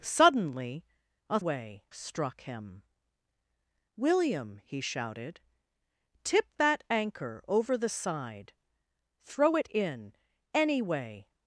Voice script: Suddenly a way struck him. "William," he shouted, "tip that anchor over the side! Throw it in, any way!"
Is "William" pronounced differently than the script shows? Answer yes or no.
no